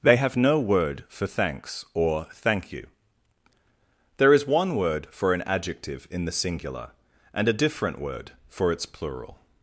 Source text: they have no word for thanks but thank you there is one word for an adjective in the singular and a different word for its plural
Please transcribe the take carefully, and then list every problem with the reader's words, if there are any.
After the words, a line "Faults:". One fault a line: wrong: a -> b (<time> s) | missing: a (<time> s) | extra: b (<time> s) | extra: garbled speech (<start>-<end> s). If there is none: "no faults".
they have no word for thanks or thank you there is one word for an adjective in the singular and a different word for its plural
Faults:
wrong: but -> or (1.9 s)